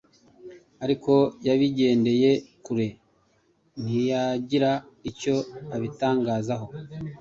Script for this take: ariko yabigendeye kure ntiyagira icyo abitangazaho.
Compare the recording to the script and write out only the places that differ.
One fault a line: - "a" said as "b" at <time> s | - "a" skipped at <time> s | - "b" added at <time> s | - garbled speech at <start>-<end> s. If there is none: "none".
none